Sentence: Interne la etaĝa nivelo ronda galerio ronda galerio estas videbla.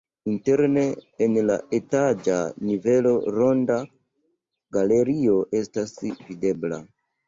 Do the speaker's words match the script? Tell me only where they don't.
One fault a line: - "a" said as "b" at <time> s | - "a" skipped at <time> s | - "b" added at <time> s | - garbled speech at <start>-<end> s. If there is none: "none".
- "en" added at 1.2 s
- "ronda galerio" skipped at 5.4 s